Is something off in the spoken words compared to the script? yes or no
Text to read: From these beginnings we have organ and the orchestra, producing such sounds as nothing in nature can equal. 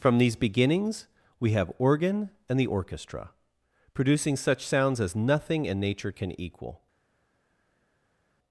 no